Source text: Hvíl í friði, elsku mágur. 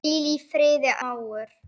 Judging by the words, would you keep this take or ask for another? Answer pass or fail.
fail